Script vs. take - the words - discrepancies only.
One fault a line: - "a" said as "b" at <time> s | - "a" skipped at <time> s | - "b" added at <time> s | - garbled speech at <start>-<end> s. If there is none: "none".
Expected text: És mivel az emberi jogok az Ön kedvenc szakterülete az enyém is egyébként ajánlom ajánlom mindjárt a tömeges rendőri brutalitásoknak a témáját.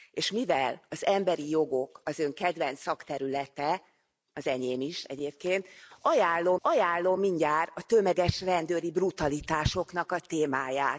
none